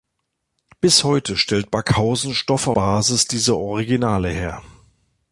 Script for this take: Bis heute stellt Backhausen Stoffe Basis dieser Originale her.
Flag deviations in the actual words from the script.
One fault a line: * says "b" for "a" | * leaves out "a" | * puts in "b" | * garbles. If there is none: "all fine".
all fine